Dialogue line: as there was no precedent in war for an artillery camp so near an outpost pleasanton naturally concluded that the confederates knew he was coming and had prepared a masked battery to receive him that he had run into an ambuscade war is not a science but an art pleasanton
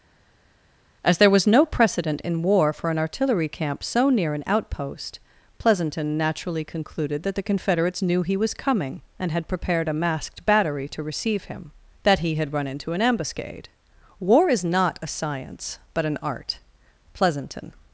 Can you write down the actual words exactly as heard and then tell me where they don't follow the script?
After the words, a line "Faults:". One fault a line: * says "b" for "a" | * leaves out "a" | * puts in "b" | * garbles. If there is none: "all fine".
as there was no precedent in war for an artillery camp so near an outpost pleasanton naturally concluded that the confederates knew he was coming and had prepared a masked battery to receive him that he had run into an ambuscade war is not a science but an art pleasanton
Faults:
all fine